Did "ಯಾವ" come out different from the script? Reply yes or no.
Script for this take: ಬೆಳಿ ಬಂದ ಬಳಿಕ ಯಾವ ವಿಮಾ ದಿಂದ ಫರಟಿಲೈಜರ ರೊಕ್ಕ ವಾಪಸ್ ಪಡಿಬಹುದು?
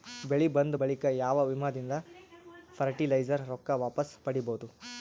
no